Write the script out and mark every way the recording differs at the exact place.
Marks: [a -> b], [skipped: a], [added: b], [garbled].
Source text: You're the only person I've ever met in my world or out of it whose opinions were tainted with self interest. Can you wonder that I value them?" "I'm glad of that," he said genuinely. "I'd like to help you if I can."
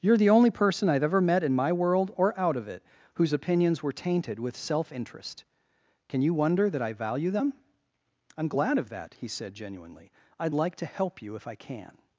You're the only person I've ever met in my world or out of it whose opinions were tainted with self interest. Can you wonder that I value them?" "I'm glad of that," he said genuinely. "I'd like to help you if I can."